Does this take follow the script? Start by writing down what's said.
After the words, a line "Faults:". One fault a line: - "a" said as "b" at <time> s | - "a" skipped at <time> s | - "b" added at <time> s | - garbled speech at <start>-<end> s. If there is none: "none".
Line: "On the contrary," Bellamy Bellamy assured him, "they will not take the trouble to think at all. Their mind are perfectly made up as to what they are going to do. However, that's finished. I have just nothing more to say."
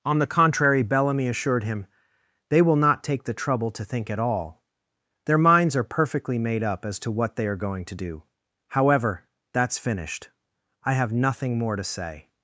"On the contrary," Bellamy assured him, "they will not take the trouble to think at all. Their minds are perfectly made up as to what they are going to do. However, that's finished. I have nothing more to say."
Faults:
- "Bellamy" skipped at 1.3 s
- "mind" said as "minds" at 5.4 s
- "just" skipped at 11.1 s